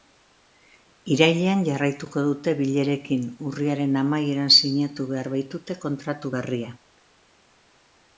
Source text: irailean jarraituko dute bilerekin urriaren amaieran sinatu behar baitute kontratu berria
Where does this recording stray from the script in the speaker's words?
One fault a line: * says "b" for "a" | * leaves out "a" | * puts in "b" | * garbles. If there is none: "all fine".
all fine